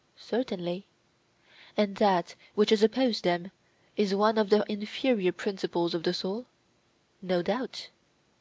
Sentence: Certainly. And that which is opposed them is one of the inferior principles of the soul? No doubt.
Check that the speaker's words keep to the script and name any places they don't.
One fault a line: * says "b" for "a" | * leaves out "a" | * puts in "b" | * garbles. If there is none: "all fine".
all fine